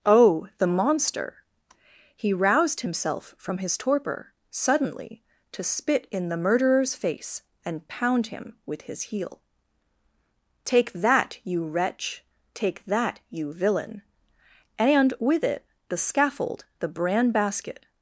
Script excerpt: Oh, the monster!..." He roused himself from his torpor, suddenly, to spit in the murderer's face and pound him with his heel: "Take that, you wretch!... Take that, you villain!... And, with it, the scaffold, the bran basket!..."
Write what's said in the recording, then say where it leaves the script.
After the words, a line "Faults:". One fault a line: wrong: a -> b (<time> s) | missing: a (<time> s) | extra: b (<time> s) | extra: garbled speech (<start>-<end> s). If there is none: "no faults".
Oh, the monster!..." He roused himself from his torpor, suddenly, to spit in the murderer's face and pound him with his heel: "Take that, you wretch!... Take that, you villain!... And, with it, the scaffold, the bran basket!..."
Faults:
no faults